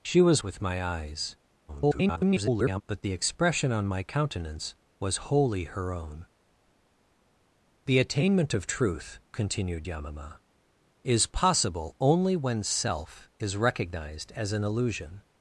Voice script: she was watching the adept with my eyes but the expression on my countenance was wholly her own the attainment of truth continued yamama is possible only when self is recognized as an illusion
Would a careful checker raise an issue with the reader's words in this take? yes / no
yes